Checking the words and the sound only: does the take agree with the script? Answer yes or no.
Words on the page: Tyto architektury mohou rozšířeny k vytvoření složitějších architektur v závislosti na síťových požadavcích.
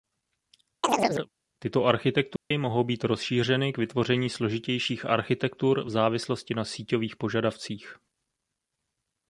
no